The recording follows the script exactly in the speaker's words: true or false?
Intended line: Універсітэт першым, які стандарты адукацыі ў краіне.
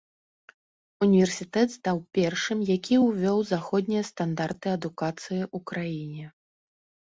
false